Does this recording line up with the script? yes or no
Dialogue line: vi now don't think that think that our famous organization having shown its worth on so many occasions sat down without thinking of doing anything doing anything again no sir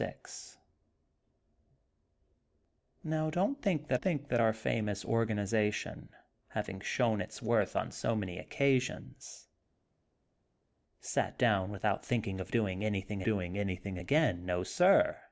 yes